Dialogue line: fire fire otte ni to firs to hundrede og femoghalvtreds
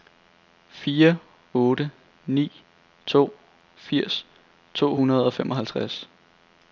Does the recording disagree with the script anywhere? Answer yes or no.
yes